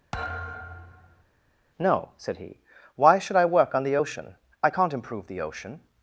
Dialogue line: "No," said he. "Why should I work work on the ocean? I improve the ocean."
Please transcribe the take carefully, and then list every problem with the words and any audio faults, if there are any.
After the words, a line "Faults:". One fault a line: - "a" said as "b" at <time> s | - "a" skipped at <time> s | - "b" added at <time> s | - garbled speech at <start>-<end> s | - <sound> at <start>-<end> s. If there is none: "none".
"No," said he. "Why should I work on the ocean? I can't improve the ocean."
Faults:
- thud at 0.1-1.2 s
- "work" skipped at 3.7 s
- "can't" added at 4.7 s